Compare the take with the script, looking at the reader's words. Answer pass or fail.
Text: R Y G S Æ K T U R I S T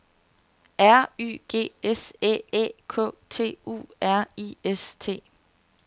fail